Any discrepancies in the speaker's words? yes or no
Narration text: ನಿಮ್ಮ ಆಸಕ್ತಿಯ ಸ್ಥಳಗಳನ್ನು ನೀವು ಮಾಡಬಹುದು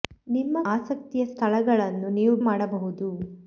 no